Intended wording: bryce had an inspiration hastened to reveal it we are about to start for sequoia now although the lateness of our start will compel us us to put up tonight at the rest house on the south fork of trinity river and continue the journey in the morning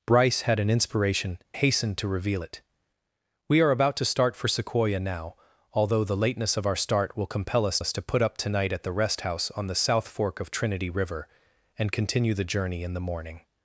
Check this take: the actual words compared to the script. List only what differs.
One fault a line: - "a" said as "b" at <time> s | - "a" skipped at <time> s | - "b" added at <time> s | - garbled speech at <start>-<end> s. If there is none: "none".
none